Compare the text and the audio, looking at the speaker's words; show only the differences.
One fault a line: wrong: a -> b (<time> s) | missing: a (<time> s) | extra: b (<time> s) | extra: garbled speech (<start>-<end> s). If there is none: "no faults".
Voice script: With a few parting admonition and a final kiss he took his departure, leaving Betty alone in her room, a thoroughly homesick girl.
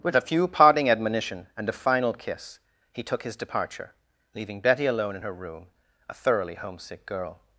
no faults